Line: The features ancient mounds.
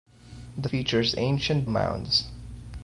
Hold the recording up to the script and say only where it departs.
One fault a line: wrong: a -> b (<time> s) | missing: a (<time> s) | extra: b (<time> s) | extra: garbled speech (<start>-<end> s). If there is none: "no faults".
no faults